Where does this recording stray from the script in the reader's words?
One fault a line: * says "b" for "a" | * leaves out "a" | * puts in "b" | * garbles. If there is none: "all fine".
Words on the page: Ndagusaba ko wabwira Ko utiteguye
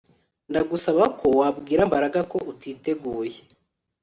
* puts in "Mbaraga"